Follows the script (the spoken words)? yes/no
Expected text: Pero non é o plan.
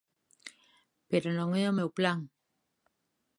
no